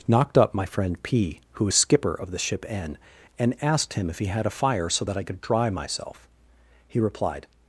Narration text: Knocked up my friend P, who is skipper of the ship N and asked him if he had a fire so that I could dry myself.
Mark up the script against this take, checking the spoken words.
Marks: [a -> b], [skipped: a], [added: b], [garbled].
Knocked up my friend P, who is skipper of the ship N and asked him if he had a fire so that I could dry myself. [added: He replied]